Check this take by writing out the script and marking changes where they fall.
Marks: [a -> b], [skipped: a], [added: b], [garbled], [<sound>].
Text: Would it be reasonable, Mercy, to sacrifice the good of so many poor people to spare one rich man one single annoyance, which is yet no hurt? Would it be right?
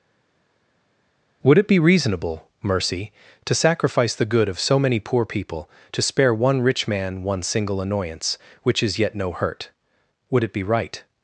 Would it be reasonable, Mercy, to sacrifice the good of so many poor people to spare one rich man one single annoyance, which is yet no hurt? Would it be right?